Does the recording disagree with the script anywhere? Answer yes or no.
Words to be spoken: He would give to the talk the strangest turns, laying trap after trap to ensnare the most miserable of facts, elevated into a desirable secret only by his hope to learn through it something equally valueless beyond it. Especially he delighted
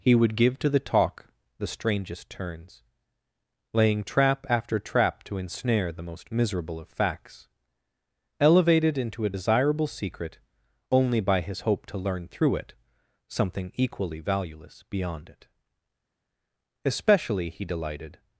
no